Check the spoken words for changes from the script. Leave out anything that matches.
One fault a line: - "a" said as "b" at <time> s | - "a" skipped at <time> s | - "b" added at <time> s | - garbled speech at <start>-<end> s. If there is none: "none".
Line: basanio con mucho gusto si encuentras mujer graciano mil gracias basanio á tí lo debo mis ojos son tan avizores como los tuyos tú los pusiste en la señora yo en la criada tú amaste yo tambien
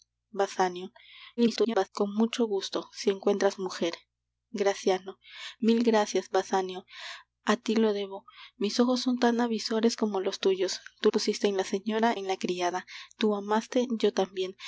- garbled speech at 1.4-1.9 s
- "los" skipped at 11.1 s
- "yo" skipped at 12.1 s